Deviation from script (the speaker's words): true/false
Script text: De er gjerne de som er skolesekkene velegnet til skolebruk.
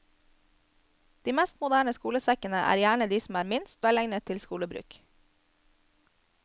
true